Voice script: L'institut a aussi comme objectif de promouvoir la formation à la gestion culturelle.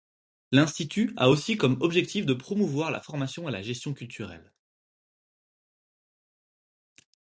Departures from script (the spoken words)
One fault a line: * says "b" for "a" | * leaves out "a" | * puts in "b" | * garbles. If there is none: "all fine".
all fine